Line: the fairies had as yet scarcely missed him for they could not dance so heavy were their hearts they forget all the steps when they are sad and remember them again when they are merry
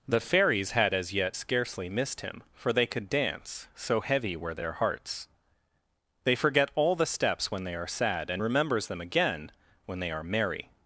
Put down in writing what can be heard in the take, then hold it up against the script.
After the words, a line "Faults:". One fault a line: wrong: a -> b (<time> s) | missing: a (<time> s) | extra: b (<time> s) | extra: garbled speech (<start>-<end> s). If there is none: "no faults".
the fairies had as yet scarcely missed him for they could dance so heavy were their hearts they forget all the steps when they are sad and remembers them again when they are merry
Faults:
missing: not (3.1 s)
wrong: remember -> remembers (8.4 s)